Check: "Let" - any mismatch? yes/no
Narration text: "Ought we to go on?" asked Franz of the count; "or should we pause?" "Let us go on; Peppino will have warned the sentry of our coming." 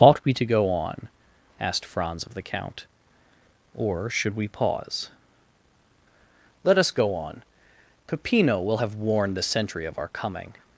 no